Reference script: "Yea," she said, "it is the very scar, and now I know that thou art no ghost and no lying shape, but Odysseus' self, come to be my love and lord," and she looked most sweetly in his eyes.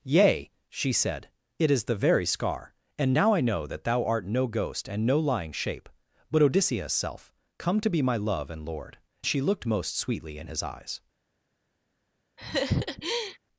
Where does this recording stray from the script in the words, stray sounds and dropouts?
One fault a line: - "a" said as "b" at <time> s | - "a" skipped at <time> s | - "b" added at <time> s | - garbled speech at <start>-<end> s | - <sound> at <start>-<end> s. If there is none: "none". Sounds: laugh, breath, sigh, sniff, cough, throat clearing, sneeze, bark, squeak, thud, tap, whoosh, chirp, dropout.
- "and" skipped at 9.0 s
- laugh at 12.4-13.4 s